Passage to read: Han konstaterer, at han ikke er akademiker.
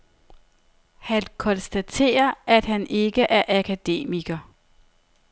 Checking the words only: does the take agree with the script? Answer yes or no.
yes